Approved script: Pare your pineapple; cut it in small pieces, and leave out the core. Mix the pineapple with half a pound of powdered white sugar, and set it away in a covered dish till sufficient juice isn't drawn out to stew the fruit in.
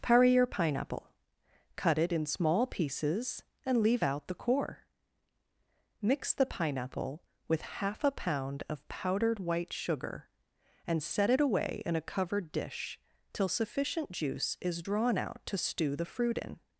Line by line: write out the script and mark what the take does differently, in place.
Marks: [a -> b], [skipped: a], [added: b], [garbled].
Pare your pineapple; cut it in small pieces, and leave out the core. Mix the pineapple with half a pound of powdered white sugar, and set it away in a covered dish till sufficient juice [isn't -> is] drawn out to stew the fruit in.